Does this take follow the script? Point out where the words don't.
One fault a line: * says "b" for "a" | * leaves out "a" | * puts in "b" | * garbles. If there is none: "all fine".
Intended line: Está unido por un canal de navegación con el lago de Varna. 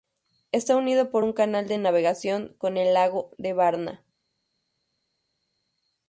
all fine